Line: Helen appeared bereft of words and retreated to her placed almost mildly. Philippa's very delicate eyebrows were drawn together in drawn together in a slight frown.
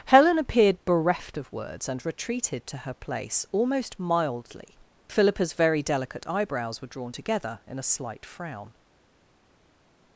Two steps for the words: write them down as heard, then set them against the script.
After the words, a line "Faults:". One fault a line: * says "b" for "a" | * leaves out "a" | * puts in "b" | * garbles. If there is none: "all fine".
Helen appeared bereft of words and retreated to her place almost mildly. Philippa's very delicate eyebrows were drawn together in a slight frown.
Faults:
* says "place" for "placed"
* leaves out "drawn together in"